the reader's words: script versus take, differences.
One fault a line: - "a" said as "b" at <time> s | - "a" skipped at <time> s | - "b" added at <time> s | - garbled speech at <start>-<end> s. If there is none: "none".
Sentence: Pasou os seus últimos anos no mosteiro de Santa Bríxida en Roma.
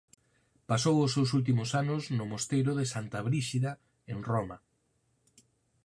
none